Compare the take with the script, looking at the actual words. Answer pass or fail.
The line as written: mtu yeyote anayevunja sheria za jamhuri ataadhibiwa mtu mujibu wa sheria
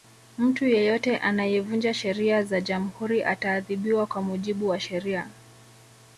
fail